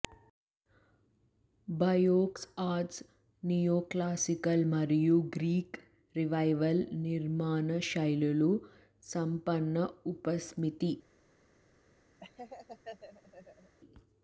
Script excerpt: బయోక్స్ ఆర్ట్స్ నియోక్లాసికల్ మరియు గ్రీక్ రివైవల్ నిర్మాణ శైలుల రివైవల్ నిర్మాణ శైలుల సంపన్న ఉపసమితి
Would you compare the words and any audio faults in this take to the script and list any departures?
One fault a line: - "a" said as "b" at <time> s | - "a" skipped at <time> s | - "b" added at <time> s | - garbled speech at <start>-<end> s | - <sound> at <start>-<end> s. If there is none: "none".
- "రివైవల్ నిర్మాణ శైలుల" skipped at 8.5 s
- laugh at 12.2-13.8 s